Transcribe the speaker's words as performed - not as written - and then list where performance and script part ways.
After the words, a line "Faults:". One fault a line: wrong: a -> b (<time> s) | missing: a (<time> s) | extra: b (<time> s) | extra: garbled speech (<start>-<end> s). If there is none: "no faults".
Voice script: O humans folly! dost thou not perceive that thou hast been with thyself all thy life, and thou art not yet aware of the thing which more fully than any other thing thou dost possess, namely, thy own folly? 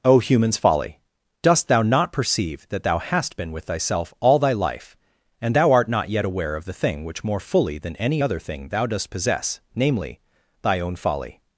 O humans folly! dost thou not perceive that thou hast been with thyself all thy life, and thou art not yet aware of the thing which more fully than any other thing thou dost possess, namely, thy own folly?
Faults:
no faults